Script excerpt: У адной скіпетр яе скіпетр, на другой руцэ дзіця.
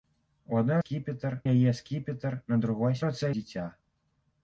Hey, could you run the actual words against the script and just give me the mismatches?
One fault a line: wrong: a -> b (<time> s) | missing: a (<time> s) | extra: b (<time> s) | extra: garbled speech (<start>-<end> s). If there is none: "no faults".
no faults